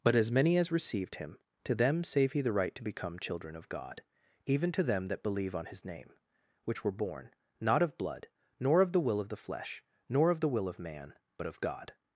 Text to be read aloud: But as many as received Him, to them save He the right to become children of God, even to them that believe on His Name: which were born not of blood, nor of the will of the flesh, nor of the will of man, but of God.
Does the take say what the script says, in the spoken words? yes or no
yes